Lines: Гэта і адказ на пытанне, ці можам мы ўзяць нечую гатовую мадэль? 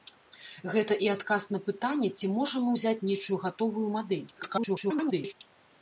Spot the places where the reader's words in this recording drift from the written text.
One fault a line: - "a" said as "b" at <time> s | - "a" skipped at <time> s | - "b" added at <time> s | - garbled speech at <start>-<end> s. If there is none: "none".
- garbled speech at 4.4-5.3 s